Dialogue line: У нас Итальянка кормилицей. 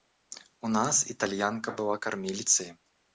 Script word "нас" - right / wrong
right